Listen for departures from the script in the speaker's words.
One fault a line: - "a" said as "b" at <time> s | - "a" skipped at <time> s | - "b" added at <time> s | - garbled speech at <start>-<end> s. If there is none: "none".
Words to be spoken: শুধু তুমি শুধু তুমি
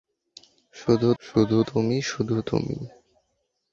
- "শুধু" added at 1.2 s